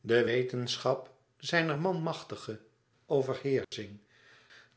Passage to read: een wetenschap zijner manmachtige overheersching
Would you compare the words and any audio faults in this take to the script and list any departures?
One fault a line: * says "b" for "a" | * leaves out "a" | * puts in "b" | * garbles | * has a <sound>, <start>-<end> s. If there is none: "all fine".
* says "de" for "een"
* has a dropout, 3.6-3.7 s